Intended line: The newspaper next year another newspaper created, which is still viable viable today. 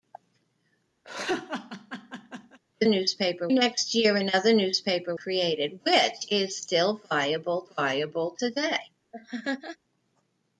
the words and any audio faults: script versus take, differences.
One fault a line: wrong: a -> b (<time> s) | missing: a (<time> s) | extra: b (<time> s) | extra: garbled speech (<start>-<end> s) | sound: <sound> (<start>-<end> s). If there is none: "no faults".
sound: laugh (1.0-2.6 s)
sound: laugh (9.1-9.8 s)